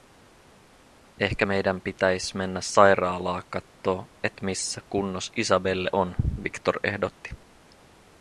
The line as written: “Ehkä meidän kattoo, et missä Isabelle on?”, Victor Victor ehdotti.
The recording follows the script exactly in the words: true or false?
false